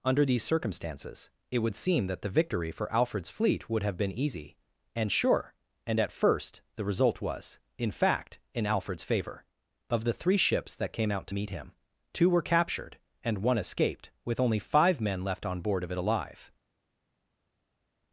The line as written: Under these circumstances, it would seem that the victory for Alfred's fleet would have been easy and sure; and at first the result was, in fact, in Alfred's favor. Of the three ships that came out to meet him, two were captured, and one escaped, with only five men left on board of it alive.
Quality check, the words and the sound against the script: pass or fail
pass